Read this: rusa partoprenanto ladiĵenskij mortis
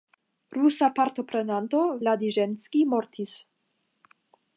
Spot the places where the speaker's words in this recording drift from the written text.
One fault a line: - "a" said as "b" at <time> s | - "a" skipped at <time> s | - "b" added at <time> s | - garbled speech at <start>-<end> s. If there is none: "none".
none